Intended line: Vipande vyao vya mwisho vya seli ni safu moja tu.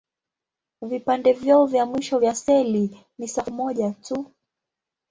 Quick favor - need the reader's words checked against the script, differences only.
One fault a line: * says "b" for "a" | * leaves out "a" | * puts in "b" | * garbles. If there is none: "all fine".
all fine